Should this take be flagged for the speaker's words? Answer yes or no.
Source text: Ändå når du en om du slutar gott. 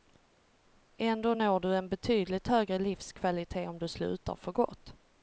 yes